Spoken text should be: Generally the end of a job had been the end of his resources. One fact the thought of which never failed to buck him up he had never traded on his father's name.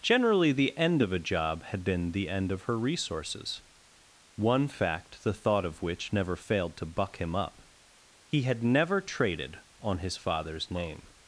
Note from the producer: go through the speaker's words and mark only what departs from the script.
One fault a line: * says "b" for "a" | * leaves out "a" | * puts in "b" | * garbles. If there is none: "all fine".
* says "her" for "his"